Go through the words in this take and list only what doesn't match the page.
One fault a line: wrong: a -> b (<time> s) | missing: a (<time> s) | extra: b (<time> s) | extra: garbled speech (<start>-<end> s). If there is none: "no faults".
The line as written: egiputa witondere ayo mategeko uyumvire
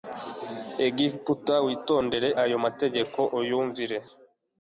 no faults